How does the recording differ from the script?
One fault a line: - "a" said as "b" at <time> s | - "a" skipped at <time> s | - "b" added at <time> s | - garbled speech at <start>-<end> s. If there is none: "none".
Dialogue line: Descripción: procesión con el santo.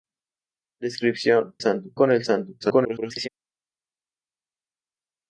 - "procesión" said as "santo" at 1.6 s
- garbled speech at 2.6-3.3 s